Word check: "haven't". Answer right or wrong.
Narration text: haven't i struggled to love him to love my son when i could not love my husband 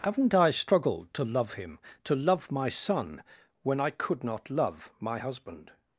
right